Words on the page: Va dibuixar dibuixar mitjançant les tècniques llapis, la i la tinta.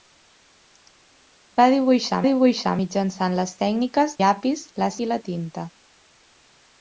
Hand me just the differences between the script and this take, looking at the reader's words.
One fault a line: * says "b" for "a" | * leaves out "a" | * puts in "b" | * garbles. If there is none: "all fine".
all fine